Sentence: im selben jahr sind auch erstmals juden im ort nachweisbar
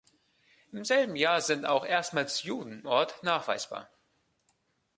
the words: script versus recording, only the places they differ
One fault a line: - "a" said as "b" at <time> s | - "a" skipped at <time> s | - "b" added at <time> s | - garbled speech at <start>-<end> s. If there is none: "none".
- "im" skipped at 2.9 s